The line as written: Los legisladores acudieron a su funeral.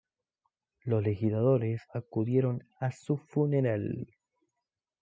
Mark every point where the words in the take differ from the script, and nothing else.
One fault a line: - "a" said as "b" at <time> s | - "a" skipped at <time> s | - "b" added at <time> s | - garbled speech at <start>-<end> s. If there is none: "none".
none